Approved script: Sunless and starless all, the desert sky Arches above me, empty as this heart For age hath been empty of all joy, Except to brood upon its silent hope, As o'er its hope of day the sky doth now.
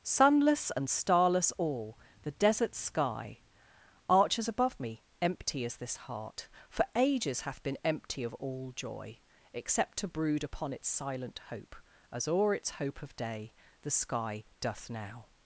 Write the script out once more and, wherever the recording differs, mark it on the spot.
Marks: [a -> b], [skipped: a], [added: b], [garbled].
Sunless and starless all, the desert sky Arches above me, empty as this heart For [age -> ages] hath been empty of all joy, Except to brood upon its silent hope, As o'er its hope of day the sky doth now.